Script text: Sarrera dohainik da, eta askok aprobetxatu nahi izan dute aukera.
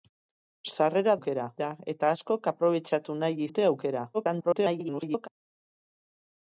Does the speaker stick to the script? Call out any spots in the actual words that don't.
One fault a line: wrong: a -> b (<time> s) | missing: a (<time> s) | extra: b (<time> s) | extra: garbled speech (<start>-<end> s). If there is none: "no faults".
wrong: dohainik -> aukera (1.2 s)
missing: izan (3.5 s)
extra: garbled speech (4.1-5.3 s)